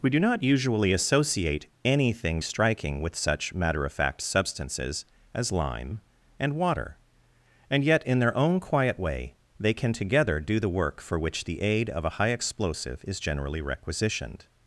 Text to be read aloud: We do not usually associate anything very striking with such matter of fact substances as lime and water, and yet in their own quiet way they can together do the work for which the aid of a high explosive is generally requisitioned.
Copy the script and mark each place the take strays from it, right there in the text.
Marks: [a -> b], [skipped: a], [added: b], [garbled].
We do not usually associate anything [skipped: very] striking with such matter of fact substances as lime and water, and yet in their own quiet way they can together do the work for which the aid of a high explosive is generally requisitioned.